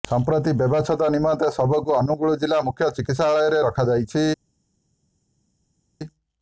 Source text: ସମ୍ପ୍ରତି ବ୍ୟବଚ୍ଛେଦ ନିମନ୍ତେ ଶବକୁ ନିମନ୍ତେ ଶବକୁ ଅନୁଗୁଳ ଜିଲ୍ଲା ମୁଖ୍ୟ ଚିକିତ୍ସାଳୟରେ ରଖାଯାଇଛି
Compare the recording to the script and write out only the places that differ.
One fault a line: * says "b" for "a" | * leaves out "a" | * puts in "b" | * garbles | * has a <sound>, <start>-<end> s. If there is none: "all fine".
* leaves out "ନିମନ୍ତେ ଶବକୁ"